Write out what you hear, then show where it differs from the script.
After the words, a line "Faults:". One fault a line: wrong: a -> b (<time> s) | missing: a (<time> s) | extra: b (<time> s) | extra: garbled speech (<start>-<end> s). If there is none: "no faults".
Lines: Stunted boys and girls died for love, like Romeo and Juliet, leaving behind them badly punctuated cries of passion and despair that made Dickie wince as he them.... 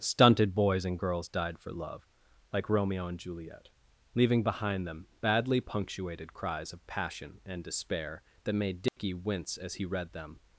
Stunted boys and girls died for love, like Romeo and Juliet, leaving behind them badly punctuated cries of passion and despair that made Dickie wince as he read them....
Faults:
extra: read (9.8 s)